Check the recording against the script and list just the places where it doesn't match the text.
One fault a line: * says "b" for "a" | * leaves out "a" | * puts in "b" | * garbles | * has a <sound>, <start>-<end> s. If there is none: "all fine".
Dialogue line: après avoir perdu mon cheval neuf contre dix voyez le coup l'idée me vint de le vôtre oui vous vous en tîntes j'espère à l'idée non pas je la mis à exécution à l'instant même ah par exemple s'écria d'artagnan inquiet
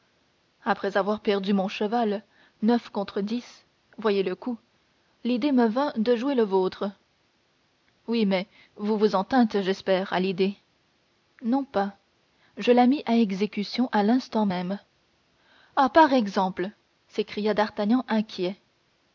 * puts in "jouer"
* puts in "mais"